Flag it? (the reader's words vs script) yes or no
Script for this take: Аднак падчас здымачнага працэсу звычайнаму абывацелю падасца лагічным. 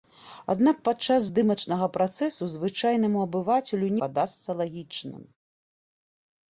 no